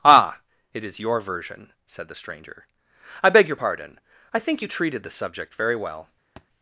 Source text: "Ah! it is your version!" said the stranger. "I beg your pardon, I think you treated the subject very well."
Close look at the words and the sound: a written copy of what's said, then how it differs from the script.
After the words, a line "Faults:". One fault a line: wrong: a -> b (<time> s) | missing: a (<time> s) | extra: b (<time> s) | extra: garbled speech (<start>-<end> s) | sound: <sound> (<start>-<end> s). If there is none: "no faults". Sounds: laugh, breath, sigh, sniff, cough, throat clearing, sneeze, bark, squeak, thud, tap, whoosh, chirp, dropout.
"Ah! it is your version!" said the stranger. "I beg your pardon, I think you treated the subject very well."
Faults:
sound: thud (6.4-6.5 s)